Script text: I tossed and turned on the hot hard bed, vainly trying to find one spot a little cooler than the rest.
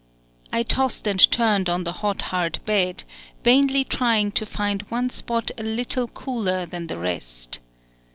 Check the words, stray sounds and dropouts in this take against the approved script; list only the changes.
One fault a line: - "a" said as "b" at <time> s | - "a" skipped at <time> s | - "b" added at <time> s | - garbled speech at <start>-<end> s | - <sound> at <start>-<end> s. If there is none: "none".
none